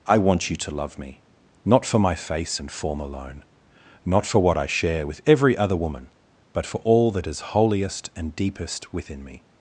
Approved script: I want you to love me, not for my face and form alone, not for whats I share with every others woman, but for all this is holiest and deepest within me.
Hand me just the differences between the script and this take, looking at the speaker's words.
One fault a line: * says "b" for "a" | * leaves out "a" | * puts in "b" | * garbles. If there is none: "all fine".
* says "what" for "whats"
* says "other" for "others"
* says "that" for "this"